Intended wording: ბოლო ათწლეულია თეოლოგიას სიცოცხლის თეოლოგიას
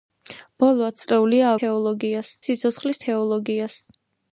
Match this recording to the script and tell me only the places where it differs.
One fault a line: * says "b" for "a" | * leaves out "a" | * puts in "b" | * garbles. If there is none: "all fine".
all fine